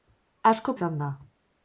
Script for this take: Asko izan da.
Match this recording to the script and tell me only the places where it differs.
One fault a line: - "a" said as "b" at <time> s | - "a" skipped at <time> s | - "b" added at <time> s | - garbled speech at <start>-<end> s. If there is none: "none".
none